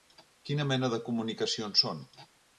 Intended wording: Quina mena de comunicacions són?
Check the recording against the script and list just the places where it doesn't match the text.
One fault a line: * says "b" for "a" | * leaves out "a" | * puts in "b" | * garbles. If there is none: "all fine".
all fine